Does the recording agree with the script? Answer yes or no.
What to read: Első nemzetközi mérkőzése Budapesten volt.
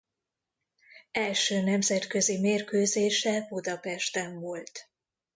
yes